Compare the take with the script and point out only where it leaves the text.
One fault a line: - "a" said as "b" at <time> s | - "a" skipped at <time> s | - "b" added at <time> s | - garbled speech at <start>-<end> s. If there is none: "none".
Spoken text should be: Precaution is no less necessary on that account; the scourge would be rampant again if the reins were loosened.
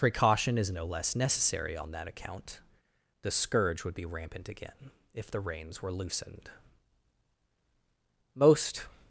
- "Most" added at 8.3 s